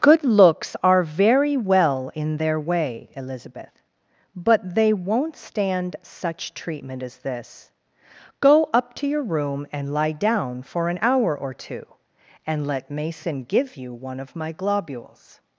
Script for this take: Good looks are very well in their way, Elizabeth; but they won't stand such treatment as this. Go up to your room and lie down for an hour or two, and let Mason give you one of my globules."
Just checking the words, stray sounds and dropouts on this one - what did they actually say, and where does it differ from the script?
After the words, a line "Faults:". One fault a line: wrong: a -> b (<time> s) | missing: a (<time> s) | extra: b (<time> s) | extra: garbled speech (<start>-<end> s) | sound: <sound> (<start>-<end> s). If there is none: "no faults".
Good looks are very well in their way, Elizabeth; but they won't stand such treatment as this. Go up to your room and lie down for an hour or two, and let Mason give you one of my globules."
Faults:
no faults